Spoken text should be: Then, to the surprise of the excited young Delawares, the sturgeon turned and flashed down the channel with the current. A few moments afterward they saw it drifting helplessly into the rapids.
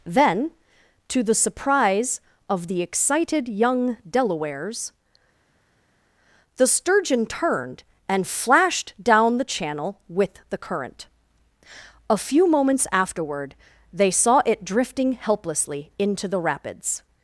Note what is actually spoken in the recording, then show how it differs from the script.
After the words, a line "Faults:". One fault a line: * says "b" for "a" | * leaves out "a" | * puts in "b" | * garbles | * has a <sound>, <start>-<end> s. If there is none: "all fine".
Then, to the surprise of the excited young Delawares, the sturgeon turned and flashed down the channel with the current. A few moments afterward they saw it drifting helplessly into the rapids.
Faults:
all fine